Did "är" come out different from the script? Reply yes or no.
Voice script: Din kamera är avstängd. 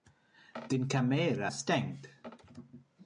yes